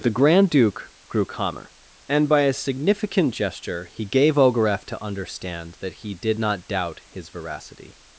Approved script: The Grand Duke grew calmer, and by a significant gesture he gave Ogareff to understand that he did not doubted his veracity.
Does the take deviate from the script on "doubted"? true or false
true